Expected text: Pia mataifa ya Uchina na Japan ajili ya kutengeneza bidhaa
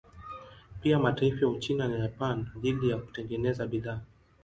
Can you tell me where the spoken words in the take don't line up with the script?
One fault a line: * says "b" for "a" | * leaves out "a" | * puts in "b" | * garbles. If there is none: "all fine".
all fine